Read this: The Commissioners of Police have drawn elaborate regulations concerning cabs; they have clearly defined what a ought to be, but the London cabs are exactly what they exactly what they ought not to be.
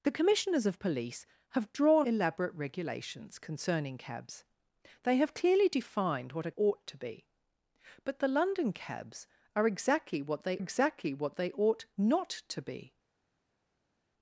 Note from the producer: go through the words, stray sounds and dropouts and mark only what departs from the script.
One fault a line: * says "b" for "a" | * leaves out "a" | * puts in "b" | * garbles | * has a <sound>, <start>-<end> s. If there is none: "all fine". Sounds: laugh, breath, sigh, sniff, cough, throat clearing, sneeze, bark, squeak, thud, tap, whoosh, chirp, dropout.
all fine